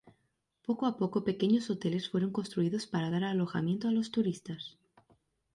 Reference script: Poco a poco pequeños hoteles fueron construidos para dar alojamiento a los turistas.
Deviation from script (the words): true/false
false